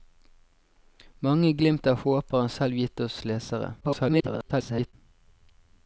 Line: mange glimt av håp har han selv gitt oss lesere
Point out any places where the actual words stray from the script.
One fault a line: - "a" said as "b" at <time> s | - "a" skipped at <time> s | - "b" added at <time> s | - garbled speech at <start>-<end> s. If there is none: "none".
- garbled speech at 3.8-4.9 s